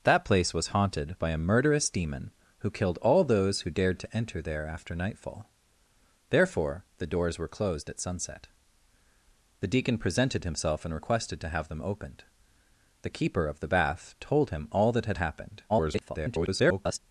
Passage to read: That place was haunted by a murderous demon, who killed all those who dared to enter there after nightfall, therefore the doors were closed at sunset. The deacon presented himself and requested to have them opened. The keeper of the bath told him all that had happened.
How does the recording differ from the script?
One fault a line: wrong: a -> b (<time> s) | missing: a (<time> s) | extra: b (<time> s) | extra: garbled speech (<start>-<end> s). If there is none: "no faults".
extra: garbled speech (15.7-17.0 s)